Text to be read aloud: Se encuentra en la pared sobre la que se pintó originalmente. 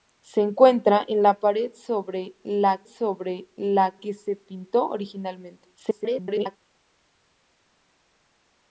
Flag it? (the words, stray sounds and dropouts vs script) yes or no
yes